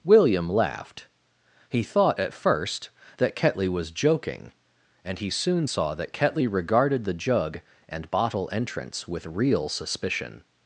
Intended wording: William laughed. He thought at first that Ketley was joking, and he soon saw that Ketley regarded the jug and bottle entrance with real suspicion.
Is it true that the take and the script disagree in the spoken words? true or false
false